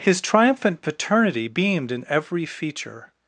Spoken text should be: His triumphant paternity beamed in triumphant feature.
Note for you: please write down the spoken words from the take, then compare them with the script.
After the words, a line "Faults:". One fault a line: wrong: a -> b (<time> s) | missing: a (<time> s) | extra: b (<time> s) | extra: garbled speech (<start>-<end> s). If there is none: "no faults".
His triumphant paternity beamed in every feature.
Faults:
wrong: triumphant -> every (2.1 s)